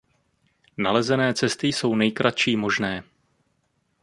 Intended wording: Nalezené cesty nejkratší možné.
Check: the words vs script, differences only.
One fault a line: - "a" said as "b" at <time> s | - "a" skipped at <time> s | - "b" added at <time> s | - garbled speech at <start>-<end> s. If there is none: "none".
- "jsou" added at 1.6 s